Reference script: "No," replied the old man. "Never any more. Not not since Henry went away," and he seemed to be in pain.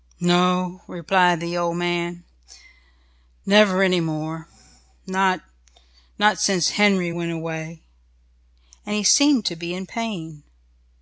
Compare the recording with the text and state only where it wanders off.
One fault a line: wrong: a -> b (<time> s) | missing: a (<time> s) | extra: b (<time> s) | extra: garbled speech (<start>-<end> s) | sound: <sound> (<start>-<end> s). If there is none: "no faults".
no faults